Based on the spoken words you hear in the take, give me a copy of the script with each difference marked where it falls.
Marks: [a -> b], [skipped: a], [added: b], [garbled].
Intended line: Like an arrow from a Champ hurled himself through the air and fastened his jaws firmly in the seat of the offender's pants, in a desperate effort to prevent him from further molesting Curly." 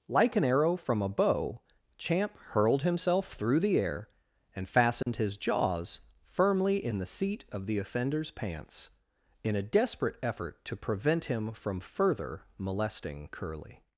Like an arrow from a [added: bow] Champ hurled himself through the air and fastened his jaws firmly in the seat of the offender's pants, in a desperate effort to prevent him from further molesting Curly."